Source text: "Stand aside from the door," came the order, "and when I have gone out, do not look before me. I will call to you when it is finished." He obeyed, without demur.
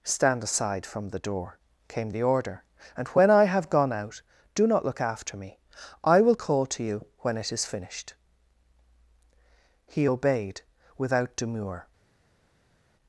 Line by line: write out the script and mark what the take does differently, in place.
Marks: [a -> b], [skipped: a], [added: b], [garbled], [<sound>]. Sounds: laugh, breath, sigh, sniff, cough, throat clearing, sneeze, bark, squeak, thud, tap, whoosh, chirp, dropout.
"Stand aside from the door," came the order, "and when I have gone out, do not look [before -> after] me. I will call to you when it is finished." He obeyed, without demur.